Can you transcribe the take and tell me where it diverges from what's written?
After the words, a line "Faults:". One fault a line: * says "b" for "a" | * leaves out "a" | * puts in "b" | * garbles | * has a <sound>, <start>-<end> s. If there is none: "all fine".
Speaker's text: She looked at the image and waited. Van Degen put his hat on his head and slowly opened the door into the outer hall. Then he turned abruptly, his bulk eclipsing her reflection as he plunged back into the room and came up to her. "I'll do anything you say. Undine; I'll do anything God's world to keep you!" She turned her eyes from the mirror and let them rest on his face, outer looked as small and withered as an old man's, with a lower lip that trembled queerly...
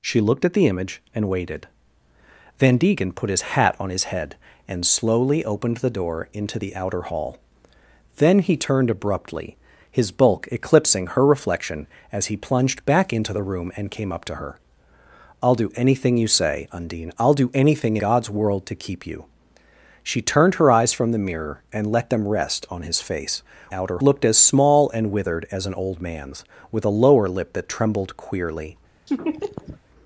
She looked at the image and waited. Van Degen put his hat on his head and slowly opened the door into the outer hall. Then he turned abruptly, his bulk eclipsing her reflection as he plunged back into the room and came up to her. "I'll do anything you say. Undine; I'll do anything God's world to keep you!" She turned her eyes from the mirror and let them rest on his face, outer looked as small and withered as an old man's, with a lower lip that trembled queerly...
Faults:
* has a laugh, 29.1-29.8 s